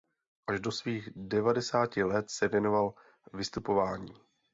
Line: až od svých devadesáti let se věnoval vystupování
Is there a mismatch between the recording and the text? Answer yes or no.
yes